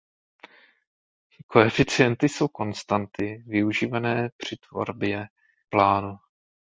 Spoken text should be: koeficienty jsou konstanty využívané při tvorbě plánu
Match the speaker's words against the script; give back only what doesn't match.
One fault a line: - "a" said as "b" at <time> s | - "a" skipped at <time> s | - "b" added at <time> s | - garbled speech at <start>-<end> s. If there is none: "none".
none